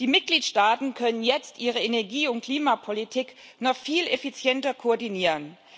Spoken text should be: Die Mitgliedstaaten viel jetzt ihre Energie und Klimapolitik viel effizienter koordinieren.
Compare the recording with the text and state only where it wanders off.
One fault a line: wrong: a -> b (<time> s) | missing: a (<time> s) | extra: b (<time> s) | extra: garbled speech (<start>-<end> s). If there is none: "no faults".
wrong: viel -> können (0.9 s)
extra: noch (3.6 s)